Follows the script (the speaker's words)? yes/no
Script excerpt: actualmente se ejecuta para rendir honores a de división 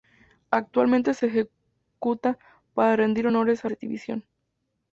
yes